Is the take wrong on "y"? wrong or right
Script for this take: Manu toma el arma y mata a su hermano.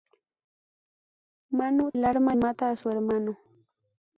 wrong